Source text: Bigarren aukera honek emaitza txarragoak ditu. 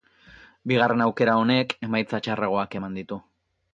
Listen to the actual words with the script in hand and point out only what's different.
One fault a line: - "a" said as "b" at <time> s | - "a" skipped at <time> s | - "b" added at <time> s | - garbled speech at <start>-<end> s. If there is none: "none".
- "eman" added at 2.8 s